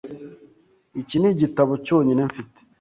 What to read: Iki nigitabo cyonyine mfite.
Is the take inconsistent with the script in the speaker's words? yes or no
no